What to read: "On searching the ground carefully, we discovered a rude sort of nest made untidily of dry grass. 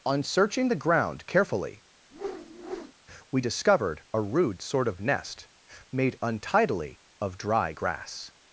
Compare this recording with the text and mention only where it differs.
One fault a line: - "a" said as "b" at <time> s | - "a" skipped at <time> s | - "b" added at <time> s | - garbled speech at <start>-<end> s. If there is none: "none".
none